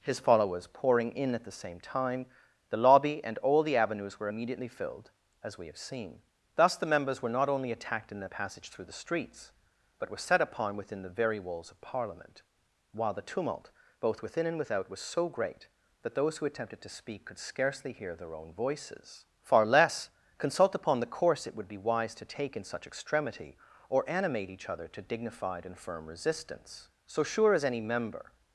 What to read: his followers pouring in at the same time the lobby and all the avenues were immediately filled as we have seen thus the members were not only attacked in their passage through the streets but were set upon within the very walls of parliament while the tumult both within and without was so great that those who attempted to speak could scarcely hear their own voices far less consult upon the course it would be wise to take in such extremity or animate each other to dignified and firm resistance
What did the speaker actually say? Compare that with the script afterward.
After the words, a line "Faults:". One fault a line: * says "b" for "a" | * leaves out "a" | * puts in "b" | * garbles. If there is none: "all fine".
his followers pouring in at the same time the lobby and all the avenues were immediately filled as we have seen thus the members were not only attacked in their passage through the streets but were set upon within the very walls of parliament while the tumult both within and without was so great that those who attempted to speak could scarcely hear their own voices far less consult upon the course it would be wise to take in such extremity or animate each other to dignified and firm resistance so sure as any member
Faults:
* puts in "so sure as any member"